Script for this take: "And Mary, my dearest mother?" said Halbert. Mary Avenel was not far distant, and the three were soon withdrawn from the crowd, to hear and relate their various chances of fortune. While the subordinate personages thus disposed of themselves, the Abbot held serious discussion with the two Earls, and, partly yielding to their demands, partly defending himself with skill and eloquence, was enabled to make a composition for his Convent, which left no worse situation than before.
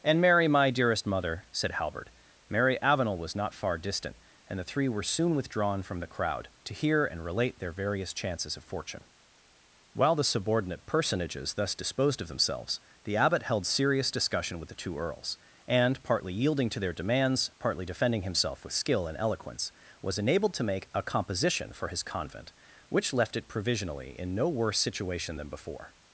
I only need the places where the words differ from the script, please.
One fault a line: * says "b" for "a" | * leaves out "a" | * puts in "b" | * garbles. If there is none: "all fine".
* puts in "it provisionally in"